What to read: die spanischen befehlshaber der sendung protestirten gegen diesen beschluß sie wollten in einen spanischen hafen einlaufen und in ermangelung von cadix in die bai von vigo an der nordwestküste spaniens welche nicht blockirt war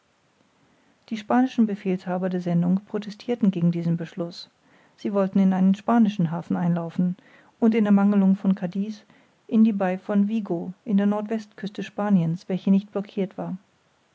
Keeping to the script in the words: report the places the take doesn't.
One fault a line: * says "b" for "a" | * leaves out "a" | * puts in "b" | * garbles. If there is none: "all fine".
all fine